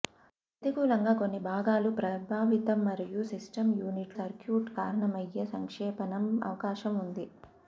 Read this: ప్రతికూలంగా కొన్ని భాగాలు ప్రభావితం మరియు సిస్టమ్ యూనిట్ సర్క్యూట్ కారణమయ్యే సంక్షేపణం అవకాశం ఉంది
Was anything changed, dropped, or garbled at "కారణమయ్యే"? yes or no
no